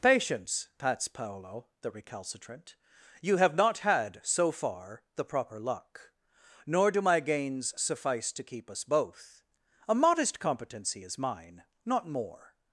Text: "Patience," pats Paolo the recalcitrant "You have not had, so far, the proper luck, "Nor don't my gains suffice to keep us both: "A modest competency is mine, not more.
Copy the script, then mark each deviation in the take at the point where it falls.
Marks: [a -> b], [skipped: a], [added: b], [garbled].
"Patience," pats Paolo the recalcitrant "You have not had, so far, the proper luck, "Nor [don't -> do] my gains suffice to keep us both: "A modest competency is mine, not more.